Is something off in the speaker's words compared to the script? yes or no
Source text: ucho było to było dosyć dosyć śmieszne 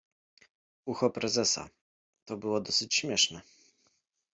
yes